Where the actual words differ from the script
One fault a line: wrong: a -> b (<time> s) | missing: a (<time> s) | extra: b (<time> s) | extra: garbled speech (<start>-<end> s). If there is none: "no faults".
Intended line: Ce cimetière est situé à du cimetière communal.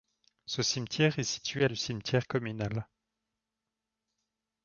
no faults